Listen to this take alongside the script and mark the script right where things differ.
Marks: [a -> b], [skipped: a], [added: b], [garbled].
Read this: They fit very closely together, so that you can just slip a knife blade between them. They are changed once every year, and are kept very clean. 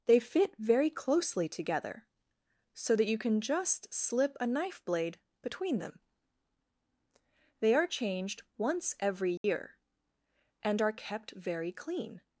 They fit very closely together, so that you can just slip a knife blade between them. They are changed once every year, and are kept very clean.